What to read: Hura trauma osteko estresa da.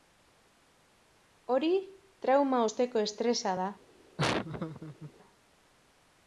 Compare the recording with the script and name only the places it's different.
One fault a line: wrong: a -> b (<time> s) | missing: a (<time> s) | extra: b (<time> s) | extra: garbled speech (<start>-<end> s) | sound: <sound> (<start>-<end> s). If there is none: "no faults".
wrong: Hura -> Hori (1.6 s)
sound: laugh (4.2-5.1 s)